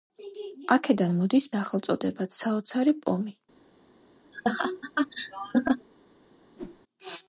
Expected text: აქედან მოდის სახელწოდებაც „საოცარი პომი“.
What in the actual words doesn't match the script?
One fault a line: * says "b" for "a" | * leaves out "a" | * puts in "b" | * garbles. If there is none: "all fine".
all fine